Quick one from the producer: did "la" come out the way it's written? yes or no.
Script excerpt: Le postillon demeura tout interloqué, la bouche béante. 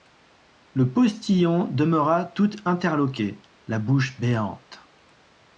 yes